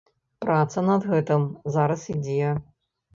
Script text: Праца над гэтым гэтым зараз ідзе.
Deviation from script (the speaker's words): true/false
true